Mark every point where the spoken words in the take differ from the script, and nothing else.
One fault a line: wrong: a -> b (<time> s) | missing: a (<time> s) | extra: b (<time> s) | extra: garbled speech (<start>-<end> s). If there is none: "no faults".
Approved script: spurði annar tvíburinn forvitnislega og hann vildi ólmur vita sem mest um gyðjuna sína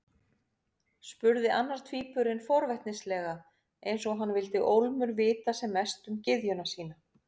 extra: eins (3.9 s)